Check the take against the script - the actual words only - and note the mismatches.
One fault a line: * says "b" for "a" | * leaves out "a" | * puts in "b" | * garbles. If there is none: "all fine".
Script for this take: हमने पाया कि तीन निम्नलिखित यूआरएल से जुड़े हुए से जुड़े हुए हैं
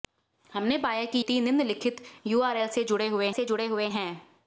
all fine